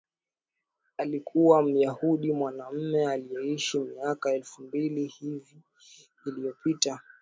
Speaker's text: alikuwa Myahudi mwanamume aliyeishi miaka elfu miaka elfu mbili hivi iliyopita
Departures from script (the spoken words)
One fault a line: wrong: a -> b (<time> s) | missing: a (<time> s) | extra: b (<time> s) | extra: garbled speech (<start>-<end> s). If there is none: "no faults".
missing: miaka elfu (4.6 s)